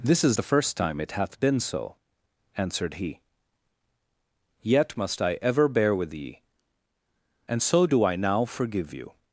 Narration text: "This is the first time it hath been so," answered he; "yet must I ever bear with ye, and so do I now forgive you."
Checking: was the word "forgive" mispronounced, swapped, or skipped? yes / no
no